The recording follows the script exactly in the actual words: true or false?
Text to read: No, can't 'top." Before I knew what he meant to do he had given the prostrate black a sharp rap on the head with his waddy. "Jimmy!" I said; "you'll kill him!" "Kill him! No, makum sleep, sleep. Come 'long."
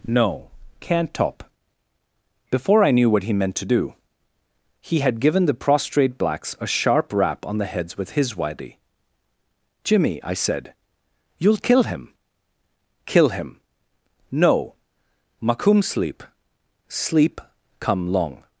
false